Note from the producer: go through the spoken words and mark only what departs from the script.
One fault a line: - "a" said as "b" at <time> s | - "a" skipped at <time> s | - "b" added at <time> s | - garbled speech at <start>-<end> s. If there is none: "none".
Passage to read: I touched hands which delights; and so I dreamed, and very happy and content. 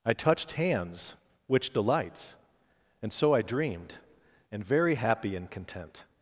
none